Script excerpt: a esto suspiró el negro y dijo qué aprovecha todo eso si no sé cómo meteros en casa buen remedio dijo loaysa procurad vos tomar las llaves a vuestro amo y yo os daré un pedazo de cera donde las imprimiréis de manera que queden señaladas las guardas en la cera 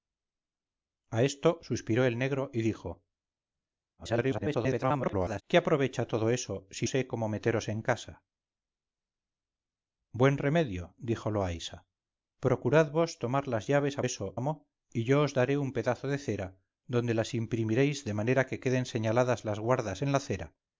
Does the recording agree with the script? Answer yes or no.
no